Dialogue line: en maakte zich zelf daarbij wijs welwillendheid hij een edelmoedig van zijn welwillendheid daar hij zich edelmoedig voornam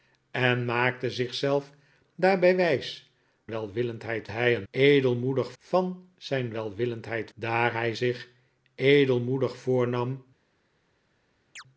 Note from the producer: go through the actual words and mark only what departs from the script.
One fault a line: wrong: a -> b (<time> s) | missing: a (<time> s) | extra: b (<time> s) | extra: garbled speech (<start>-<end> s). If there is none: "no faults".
no faults